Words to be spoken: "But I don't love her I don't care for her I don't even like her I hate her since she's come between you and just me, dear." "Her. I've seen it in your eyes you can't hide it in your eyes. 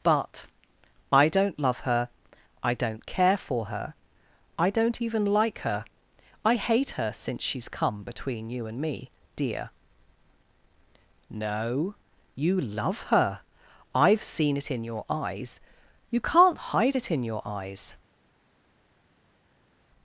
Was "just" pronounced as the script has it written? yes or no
no